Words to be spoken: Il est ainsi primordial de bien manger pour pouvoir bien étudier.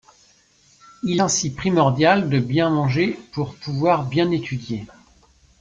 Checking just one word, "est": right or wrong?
wrong